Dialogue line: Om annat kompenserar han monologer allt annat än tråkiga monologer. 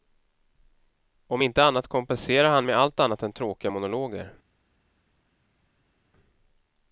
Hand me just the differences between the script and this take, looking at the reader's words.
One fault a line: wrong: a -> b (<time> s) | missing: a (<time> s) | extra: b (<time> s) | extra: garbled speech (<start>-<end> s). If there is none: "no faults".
extra: inte (1.4 s)
wrong: monologer -> med (2.7 s)